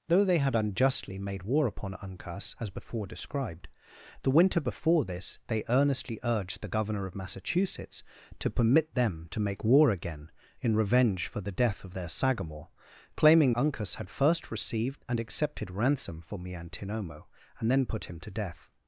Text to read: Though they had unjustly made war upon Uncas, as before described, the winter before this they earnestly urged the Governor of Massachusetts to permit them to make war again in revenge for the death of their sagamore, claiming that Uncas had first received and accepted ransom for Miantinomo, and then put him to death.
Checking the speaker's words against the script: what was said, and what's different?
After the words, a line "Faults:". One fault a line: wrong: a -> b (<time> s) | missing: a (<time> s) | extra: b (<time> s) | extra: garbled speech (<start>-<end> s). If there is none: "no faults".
Though they had unjustly made war upon Uncas, as before described, the winter before this they earnestly urged the Governor of Massachusetts to permit them to make war again in revenge for the death of their sagamore, claiming Uncas had first received and accepted ransom for Miantinomo, and then put him to death.
Faults:
missing: that (13.5 s)